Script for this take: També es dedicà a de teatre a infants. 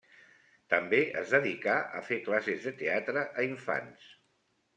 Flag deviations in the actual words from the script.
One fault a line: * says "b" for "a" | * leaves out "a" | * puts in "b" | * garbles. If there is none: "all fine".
* puts in "fer classes"